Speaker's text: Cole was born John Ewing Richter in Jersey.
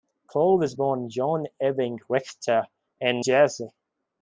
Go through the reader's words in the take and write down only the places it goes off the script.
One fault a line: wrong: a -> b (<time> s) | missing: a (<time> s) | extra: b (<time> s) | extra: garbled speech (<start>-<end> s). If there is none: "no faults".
no faults